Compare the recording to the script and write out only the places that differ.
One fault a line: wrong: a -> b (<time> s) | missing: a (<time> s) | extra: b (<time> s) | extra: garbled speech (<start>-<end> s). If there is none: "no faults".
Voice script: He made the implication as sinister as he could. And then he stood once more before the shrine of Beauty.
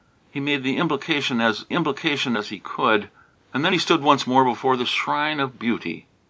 wrong: sinister -> implication (1.7 s)